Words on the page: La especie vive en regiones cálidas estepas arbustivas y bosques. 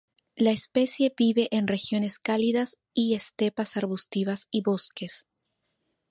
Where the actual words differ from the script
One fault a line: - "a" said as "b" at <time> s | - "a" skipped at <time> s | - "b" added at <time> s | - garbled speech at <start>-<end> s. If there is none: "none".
- "y" added at 3.0 s